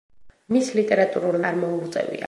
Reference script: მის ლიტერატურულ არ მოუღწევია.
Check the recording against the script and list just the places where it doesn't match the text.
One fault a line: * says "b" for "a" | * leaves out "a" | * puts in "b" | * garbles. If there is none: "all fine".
all fine